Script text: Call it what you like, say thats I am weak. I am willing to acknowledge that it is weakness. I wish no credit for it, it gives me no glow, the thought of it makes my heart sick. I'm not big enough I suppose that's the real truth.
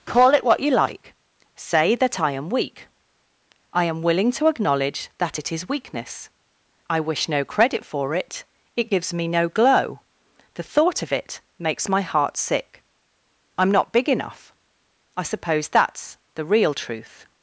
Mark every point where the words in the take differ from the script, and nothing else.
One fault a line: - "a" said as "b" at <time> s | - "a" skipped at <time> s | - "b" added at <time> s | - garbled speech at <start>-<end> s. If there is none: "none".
- "thats" said as "that" at 1.9 s